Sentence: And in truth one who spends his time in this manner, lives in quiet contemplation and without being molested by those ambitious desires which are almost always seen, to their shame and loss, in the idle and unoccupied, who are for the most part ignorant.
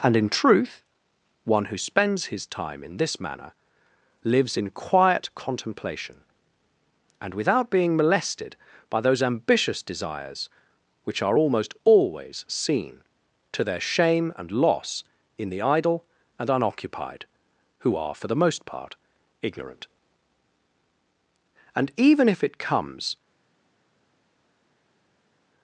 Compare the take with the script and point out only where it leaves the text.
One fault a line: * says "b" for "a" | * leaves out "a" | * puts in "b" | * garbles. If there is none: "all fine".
* puts in "And even if it comes"